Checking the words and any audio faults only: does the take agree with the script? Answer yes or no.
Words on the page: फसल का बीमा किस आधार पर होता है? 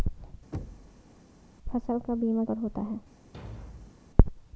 no